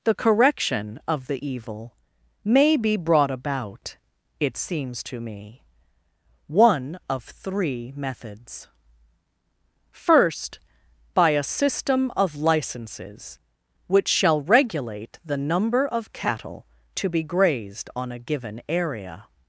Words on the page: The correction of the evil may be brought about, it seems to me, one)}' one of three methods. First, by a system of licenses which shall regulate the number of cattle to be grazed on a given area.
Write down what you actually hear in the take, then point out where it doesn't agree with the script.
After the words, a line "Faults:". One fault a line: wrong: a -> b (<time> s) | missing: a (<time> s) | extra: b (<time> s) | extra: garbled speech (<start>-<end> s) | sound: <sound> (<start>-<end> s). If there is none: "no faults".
The correction of the evil may be brought about, it seems to me, one)}' of three methods. First, by a system of licenses which shall regulate the number of cattle to be grazed on a given area.
Faults:
missing: one (7.0 s)